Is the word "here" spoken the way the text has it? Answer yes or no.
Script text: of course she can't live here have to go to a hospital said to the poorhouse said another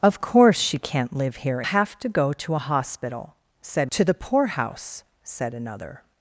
yes